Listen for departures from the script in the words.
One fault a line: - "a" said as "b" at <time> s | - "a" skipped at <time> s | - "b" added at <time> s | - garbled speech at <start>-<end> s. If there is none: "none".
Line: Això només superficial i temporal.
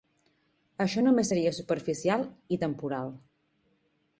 - "seria" added at 1.3 s